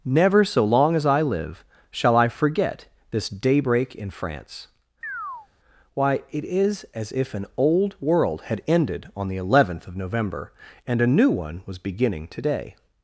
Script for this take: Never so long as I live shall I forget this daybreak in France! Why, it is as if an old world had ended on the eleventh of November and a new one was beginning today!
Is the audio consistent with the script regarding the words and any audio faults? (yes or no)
no